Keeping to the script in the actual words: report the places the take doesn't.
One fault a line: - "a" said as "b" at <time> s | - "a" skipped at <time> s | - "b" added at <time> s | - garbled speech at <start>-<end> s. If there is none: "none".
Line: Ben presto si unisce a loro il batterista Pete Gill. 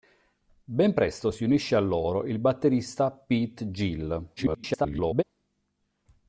- garbled speech at 4.4-5.2 s